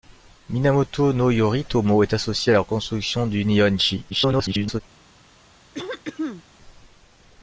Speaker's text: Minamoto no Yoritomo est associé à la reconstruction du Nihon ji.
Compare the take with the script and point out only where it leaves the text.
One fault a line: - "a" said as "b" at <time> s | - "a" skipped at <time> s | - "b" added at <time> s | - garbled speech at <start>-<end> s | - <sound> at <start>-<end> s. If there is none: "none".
- garbled speech at 4.1-4.8 s
- throat clearing at 5.7-6.4 s